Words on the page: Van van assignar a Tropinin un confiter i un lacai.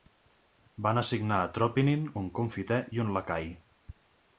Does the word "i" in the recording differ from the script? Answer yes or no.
no